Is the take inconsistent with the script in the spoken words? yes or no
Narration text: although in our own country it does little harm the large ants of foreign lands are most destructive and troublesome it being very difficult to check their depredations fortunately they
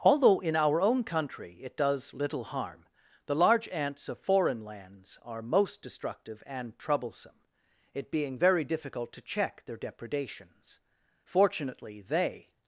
no